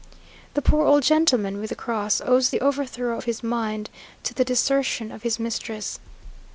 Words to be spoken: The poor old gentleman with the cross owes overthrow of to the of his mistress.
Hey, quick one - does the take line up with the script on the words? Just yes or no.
no